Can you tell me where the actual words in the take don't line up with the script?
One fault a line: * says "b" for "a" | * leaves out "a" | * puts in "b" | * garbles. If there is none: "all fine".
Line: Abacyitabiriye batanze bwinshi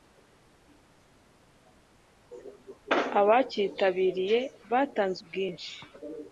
all fine